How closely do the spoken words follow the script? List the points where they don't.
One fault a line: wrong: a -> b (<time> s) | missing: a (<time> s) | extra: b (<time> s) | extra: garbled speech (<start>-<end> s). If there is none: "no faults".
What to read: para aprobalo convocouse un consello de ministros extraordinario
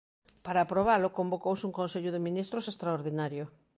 no faults